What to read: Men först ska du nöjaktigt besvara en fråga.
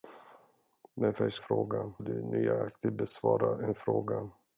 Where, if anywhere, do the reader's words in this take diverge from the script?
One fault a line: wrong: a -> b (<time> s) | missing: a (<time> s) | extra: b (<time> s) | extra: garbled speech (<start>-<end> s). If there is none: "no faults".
wrong: ska -> fråga (1.4 s)